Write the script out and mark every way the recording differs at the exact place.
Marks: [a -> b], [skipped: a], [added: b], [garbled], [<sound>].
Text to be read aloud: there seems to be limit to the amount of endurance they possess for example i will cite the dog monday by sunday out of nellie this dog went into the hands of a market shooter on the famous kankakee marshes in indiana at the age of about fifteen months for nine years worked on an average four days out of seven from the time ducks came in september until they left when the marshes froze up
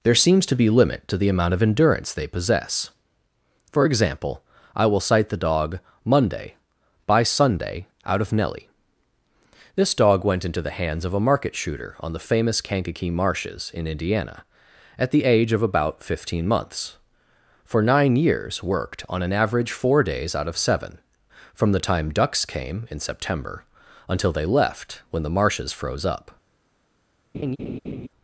there seems to be limit to the amount of endurance they possess for example i will cite the dog monday by sunday out of nellie this dog went into the hands of a market shooter on the famous kankakee marshes in indiana at the age of about fifteen months for nine years worked on an average four days out of seven from the time ducks came in september until they left when the marshes froze up [laugh]